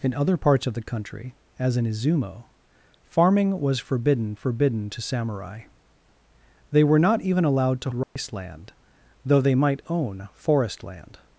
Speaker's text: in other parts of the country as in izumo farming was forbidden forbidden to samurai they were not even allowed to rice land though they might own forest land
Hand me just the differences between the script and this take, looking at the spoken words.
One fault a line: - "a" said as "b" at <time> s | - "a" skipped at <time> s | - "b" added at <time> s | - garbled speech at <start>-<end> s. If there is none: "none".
none